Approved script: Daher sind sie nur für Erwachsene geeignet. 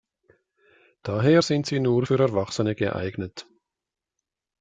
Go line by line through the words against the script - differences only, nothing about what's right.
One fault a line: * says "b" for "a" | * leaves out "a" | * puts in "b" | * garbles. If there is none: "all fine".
all fine